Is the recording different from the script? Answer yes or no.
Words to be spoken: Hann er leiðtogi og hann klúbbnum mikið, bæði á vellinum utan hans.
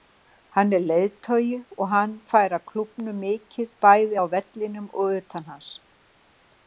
yes